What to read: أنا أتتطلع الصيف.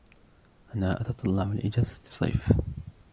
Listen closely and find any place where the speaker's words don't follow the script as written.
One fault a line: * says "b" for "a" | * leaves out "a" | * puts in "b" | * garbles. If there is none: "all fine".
* puts in "لإجازة"